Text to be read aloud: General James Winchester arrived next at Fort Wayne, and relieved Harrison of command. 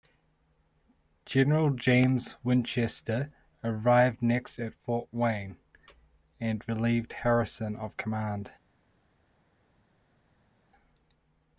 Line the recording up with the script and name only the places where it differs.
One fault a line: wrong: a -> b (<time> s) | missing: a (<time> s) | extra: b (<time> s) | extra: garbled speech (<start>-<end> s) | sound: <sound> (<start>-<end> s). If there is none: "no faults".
no faults